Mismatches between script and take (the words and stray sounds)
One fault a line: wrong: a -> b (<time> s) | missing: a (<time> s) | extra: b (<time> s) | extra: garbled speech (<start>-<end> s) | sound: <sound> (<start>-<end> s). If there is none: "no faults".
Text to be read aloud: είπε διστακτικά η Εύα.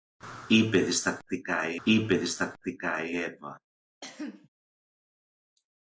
extra: είπε διστακτικά η (1.8 s)
sound: cough (4.0-4.5 s)